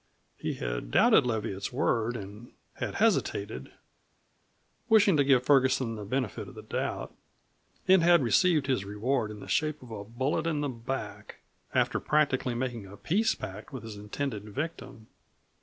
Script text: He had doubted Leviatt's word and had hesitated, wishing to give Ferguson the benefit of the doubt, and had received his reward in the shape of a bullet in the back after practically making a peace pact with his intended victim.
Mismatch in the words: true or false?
false